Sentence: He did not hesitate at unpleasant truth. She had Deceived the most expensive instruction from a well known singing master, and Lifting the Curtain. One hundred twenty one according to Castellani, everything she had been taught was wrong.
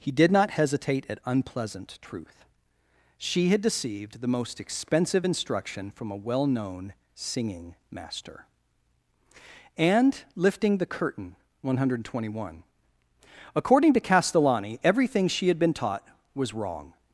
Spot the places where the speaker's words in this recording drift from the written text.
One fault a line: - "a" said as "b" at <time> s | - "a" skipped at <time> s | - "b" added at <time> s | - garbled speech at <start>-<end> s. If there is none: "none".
none